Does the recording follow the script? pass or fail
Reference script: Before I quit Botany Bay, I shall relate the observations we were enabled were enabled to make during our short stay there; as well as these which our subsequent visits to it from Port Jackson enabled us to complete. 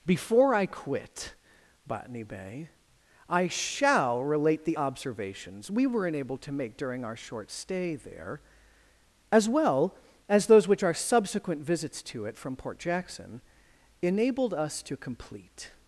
fail